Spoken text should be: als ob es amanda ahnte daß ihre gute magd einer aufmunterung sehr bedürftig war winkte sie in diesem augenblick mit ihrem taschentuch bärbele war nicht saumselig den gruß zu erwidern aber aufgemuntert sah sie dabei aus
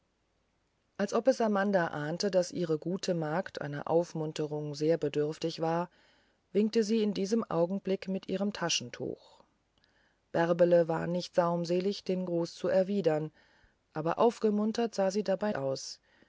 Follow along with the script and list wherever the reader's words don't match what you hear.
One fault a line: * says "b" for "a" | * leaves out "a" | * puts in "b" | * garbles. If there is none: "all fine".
all fine